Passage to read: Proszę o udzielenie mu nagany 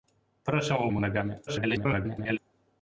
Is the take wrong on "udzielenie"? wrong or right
wrong